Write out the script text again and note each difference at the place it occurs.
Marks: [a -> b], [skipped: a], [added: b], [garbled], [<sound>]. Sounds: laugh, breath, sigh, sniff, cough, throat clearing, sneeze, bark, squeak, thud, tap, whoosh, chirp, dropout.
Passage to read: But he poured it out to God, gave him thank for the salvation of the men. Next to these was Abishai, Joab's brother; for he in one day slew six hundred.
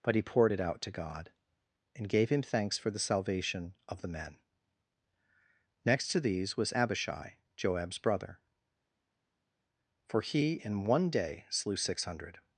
But he poured it out to God, [added: and] gave him [thank -> thanks] for the salvation of the men. Next to these was Abishai, Joab's brother; for he in one day slew six hundred.